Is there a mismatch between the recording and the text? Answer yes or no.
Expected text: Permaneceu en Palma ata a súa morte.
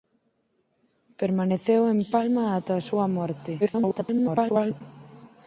yes